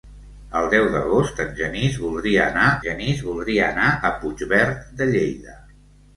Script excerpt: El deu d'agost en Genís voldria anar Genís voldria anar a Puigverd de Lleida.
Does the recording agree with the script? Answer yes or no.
yes